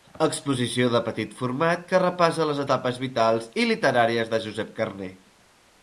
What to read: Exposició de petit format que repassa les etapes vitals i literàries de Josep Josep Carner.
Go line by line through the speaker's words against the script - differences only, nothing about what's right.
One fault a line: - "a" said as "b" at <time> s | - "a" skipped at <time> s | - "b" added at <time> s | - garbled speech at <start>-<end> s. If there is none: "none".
- "Josep" skipped at 4.8 s